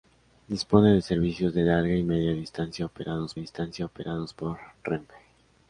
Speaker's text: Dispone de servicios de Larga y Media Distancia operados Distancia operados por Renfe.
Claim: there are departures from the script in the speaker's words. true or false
false